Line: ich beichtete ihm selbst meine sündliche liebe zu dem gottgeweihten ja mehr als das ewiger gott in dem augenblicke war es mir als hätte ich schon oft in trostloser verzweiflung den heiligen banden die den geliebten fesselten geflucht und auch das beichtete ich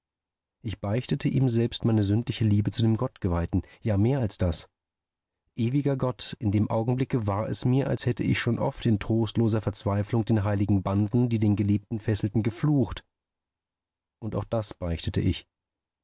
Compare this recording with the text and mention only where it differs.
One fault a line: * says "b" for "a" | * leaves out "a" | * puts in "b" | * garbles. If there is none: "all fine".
all fine